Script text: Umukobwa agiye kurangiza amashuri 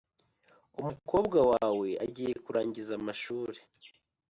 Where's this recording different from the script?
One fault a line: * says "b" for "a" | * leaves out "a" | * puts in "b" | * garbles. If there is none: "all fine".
* puts in "wawe"